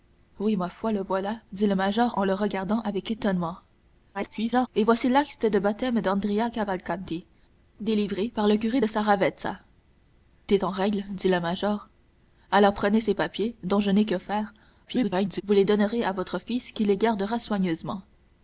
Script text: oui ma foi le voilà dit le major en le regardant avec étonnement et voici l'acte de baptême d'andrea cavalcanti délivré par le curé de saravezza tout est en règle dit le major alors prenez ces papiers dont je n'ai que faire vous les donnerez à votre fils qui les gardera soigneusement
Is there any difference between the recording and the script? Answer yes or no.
yes